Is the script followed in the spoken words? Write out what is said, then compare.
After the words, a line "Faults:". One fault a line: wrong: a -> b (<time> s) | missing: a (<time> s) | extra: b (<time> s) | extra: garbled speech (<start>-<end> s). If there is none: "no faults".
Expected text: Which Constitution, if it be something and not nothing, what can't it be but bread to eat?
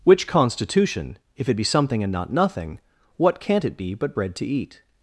Which Constitution, if it be something and not nothing, what can't it be but bread to eat?
Faults:
no faults